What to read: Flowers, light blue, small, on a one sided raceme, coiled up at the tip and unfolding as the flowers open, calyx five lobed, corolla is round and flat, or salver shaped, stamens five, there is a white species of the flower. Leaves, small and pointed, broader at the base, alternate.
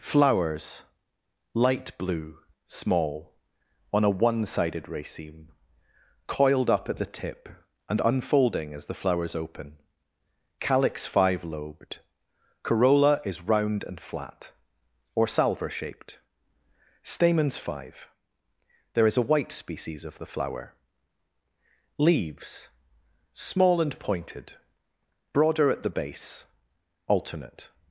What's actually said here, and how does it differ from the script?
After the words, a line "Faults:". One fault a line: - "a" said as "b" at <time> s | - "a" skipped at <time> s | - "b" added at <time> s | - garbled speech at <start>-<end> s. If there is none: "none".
Flowers, light blue, small, on a one sided raceme, coiled up at the tip and unfolding as the flowers open, calyx five lobed, corolla is round and flat, or salver shaped, stamens five, there is a white species of the flower. Leaves, small and pointed, broader at the base, alternate.
Faults:
none